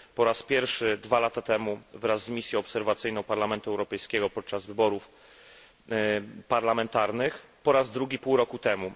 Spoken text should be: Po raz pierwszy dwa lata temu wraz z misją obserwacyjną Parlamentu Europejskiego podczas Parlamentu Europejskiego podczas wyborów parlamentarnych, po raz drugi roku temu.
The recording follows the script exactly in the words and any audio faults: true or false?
false